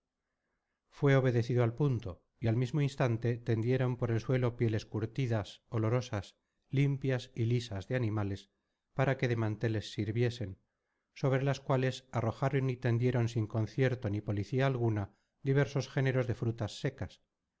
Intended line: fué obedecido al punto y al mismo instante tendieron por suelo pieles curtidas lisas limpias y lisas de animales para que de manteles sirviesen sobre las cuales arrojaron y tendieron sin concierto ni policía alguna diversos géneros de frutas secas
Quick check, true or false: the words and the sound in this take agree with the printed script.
false